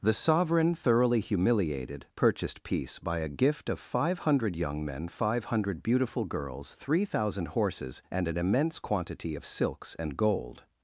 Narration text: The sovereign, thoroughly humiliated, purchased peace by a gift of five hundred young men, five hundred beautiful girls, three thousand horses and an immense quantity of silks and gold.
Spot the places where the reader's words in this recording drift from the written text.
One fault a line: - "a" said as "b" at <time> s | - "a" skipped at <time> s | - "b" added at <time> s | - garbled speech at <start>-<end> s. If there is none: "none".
none